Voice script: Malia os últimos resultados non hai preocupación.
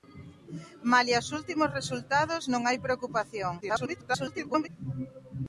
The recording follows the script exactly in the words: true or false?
false